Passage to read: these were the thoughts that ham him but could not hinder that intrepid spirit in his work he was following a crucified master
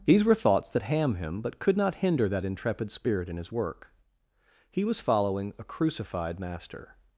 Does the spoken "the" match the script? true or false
false